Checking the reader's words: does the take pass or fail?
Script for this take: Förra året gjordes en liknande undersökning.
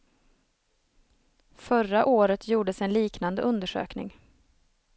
pass